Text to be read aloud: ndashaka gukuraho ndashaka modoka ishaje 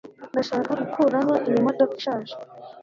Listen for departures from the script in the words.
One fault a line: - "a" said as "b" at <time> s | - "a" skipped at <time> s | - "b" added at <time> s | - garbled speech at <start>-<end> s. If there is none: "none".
- "ndashaka" said as "iyi" at 1.5 s